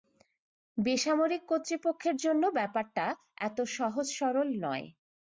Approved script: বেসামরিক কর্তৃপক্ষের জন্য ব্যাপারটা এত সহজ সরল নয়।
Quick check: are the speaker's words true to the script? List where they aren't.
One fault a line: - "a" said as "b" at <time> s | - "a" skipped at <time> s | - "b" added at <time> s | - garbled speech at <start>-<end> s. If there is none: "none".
none